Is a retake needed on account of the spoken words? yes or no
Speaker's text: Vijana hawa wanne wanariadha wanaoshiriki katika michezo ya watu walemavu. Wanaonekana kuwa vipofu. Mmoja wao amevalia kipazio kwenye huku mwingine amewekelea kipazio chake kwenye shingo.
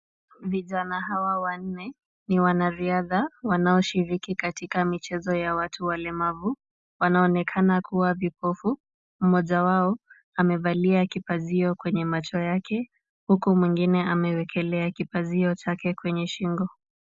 yes